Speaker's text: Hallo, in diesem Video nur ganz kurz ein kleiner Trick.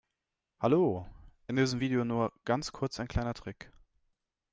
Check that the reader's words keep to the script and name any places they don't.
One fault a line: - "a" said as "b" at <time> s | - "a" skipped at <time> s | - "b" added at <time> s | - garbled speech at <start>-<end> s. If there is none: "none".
none